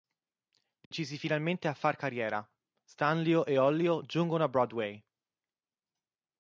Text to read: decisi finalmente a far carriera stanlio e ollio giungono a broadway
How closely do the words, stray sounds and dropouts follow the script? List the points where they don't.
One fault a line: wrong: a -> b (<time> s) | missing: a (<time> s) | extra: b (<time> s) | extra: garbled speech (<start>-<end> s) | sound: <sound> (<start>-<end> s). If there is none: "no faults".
sound: dropout (0.8-0.9 s)